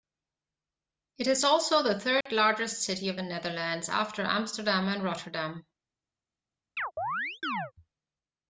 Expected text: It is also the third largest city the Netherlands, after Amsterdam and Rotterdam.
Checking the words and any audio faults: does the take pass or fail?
fail